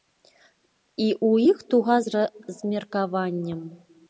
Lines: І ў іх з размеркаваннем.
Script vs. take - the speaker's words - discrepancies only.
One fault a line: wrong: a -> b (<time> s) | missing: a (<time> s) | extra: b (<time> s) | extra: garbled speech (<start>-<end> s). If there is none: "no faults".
extra: туга (1.7 s)